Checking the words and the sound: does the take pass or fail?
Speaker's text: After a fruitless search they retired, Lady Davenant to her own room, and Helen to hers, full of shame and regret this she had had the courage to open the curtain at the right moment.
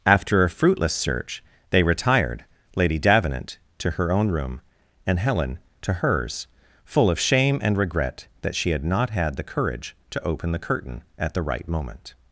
fail